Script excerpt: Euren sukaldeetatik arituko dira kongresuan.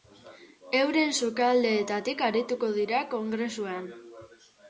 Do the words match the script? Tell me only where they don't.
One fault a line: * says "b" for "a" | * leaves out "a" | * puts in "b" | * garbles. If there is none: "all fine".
all fine